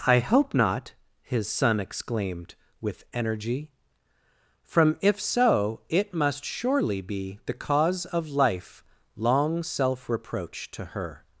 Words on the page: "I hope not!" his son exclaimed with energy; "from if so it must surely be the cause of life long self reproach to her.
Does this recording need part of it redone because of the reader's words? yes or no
no